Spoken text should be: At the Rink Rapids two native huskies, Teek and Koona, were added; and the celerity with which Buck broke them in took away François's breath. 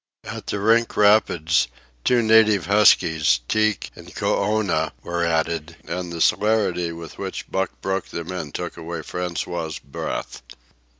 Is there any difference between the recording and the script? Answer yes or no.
no